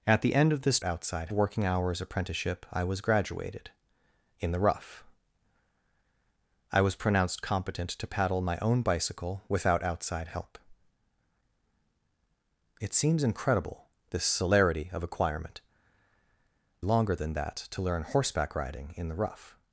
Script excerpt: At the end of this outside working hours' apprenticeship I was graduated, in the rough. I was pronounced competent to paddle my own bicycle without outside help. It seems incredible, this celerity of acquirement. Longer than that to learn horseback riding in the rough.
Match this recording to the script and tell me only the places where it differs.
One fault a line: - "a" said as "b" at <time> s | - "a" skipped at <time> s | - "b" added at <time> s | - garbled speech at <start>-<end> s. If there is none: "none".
none